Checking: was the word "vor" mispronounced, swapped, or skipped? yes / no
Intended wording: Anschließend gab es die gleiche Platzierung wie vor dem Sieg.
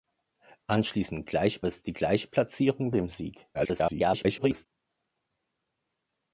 yes